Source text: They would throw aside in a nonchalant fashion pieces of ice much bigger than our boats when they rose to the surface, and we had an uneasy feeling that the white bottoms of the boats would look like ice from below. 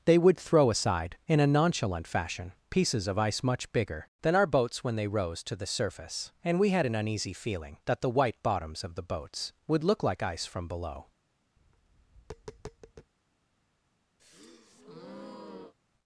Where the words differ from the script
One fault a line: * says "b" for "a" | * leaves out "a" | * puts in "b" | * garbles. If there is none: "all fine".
all fine